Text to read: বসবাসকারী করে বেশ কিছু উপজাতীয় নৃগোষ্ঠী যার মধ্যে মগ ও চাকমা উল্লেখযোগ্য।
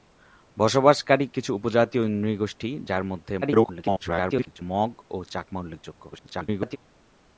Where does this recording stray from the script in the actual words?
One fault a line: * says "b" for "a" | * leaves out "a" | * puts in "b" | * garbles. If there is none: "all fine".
* leaves out "করে বেশ"
* garbles
* garbles